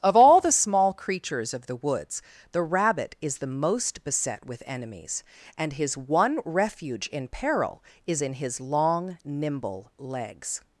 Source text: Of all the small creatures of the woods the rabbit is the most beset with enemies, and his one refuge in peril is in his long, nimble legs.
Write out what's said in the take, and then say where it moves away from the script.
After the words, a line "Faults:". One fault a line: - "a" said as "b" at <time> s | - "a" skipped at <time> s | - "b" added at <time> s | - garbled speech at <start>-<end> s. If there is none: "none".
Of all the small creatures of the woods the rabbit is the most beset with enemies, and his one refuge in peril is in his long, nimble legs.
Faults:
none